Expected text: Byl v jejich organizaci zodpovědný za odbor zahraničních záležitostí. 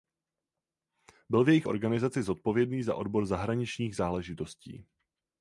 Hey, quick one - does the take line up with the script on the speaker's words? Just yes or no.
yes